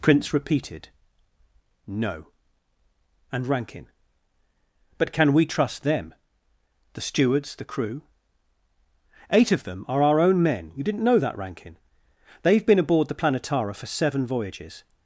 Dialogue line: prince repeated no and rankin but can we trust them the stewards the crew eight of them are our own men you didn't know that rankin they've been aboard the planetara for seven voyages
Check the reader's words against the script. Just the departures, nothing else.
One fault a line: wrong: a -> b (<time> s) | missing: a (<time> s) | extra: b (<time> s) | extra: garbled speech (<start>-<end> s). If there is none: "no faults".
no faults